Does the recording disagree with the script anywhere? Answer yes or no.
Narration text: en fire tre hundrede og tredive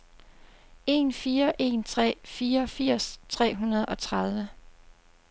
yes